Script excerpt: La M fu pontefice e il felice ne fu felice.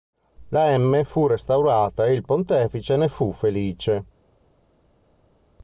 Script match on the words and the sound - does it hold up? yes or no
no